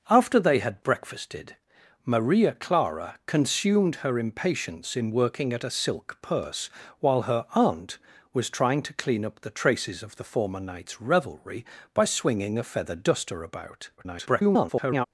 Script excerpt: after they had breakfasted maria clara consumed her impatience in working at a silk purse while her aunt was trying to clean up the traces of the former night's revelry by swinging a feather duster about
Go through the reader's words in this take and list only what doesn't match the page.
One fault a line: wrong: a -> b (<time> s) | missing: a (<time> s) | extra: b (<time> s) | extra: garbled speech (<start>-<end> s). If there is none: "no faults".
extra: garbled speech (14.0-15.1 s)